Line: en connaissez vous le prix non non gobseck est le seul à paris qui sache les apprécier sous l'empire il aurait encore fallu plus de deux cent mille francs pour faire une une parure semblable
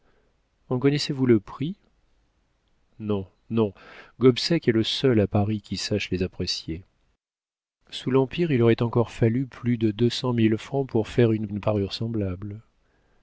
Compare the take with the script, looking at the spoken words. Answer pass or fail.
pass